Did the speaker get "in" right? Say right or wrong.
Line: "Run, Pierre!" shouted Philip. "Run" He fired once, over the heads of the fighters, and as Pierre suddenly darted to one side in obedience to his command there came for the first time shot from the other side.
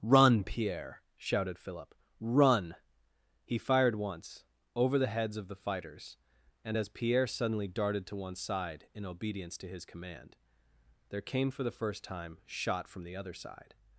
right